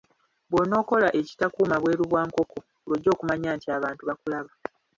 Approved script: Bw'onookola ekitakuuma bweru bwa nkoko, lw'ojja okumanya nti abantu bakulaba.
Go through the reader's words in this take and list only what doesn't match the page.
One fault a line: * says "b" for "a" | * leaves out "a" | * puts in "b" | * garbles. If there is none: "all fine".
all fine